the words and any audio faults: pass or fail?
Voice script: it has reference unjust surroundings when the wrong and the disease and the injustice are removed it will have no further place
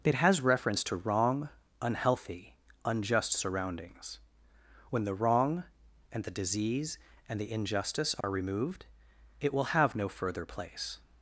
fail